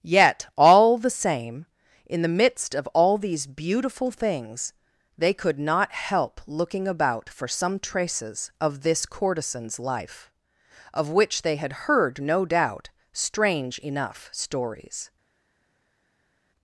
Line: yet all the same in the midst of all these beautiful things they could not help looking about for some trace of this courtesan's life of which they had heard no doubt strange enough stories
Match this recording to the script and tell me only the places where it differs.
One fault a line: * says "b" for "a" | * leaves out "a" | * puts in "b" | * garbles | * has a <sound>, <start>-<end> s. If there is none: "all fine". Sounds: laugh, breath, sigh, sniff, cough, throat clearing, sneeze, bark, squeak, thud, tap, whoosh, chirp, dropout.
* says "traces" for "trace"